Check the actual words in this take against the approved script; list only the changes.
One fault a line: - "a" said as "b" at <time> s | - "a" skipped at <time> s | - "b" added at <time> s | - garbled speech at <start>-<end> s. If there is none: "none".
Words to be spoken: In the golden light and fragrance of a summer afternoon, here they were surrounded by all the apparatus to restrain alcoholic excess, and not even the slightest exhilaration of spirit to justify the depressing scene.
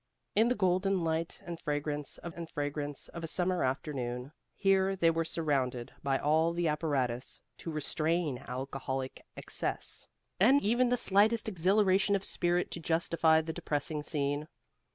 - "and fragrance of" added at 2.3 s
- "not" skipped at 10.6 s